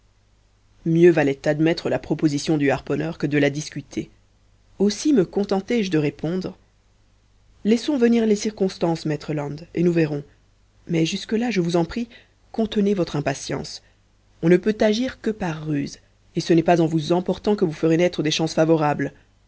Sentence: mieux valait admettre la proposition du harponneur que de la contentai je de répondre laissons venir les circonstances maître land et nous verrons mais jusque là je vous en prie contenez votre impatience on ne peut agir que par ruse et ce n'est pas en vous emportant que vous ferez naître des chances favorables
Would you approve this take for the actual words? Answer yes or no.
no